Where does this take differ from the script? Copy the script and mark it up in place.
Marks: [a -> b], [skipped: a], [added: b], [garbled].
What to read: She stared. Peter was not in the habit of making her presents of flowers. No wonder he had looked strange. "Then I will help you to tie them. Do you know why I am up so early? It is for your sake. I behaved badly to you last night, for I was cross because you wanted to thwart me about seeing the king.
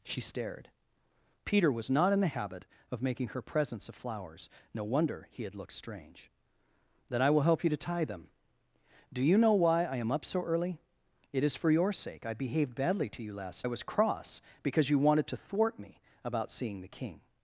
She stared. Peter was not in the habit of making her presents of flowers. No wonder he had looked strange. "Then I will help you to tie them. Do you know why I am up so early? It is for your sake. I behaved badly to you last [skipped: night, for] I was cross because you wanted to thwart me about seeing the king.